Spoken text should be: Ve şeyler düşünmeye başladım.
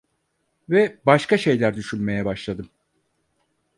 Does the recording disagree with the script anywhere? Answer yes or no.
yes